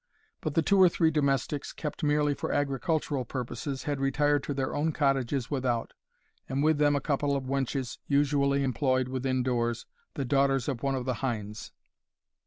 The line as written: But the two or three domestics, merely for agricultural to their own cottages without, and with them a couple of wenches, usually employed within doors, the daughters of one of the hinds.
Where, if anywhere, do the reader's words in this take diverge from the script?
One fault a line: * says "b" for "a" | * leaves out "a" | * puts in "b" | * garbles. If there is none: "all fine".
* puts in "kept"
* puts in "purposes had retired"